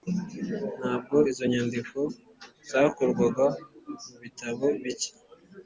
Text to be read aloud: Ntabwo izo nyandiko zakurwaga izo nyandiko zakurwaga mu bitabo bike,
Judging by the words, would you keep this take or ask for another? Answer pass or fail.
fail